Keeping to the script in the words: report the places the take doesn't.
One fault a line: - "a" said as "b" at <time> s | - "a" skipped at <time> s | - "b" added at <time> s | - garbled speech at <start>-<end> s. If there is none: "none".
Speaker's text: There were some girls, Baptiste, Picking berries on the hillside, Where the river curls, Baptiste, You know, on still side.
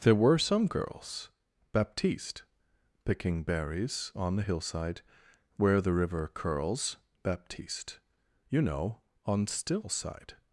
none